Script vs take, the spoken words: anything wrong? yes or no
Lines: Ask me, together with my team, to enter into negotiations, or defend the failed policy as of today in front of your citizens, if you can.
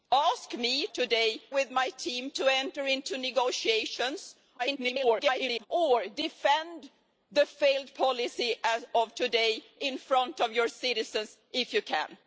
yes